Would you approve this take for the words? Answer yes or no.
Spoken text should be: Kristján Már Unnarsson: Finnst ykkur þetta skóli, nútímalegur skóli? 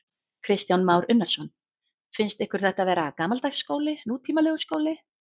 no